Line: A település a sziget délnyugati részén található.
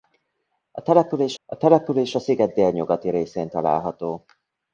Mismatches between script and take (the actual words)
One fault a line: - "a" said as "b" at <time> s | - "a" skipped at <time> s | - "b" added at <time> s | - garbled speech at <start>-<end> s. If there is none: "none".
- "település a" added at 1.6 s